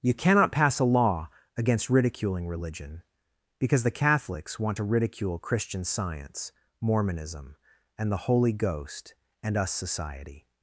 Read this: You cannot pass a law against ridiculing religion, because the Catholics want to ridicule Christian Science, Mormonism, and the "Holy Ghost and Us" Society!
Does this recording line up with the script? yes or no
yes